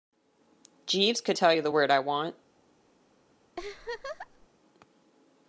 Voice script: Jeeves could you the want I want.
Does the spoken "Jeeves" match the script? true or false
true